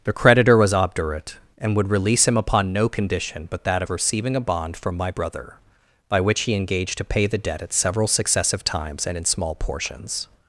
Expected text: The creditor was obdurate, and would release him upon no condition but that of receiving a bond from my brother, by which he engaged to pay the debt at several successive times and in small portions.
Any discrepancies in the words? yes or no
no